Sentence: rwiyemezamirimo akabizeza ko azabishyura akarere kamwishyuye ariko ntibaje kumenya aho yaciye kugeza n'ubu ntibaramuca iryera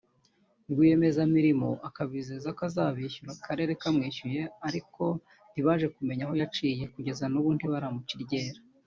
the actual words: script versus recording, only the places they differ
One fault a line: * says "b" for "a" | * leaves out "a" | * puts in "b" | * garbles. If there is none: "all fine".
all fine